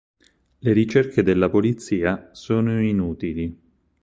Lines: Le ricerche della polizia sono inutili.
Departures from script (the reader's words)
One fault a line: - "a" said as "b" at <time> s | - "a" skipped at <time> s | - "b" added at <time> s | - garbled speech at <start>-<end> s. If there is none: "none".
none